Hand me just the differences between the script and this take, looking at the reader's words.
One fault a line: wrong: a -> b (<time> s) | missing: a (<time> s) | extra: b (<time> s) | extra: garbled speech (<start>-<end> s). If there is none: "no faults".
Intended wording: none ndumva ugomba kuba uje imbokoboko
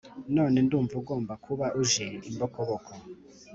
no faults